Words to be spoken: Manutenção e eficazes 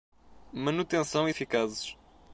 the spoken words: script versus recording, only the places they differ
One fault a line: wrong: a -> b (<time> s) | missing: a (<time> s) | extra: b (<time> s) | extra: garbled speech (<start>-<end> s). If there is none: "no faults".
no faults